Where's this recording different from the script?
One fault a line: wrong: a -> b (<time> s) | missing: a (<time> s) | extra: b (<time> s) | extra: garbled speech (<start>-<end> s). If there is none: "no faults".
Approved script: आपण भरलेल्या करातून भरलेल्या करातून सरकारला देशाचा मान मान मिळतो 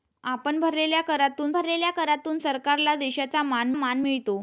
no faults